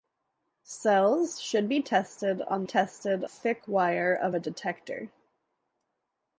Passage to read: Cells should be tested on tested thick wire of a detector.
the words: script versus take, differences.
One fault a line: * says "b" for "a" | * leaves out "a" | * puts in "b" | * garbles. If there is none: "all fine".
all fine